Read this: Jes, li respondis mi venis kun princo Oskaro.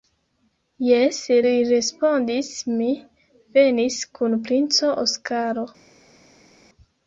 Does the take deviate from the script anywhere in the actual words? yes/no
no